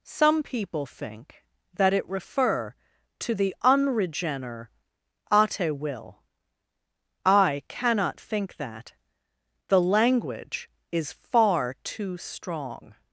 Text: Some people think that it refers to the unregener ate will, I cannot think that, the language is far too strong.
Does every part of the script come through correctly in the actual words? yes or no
no